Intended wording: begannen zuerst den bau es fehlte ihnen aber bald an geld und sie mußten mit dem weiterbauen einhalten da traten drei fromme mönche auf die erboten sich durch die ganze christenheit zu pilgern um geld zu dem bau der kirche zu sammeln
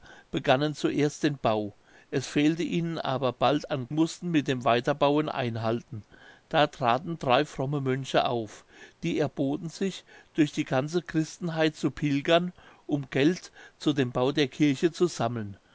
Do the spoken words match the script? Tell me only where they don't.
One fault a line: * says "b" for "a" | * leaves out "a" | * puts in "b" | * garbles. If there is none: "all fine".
* leaves out "geld und sie"